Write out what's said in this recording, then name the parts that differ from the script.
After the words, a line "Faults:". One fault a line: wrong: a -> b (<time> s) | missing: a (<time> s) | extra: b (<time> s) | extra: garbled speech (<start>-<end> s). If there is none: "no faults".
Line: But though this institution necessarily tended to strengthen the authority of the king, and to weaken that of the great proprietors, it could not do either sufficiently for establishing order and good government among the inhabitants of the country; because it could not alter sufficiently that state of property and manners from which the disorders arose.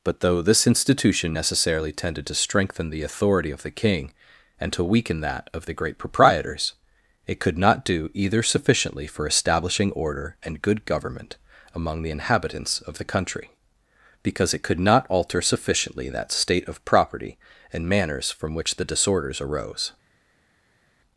But though this institution necessarily tended to strengthen the authority of the king, and to weaken that of the great proprietors, it could not do either sufficiently for establishing order and good government among the inhabitants of the country; because it could not alter sufficiently that state of property and manners from which the disorders arose.
Faults:
no faults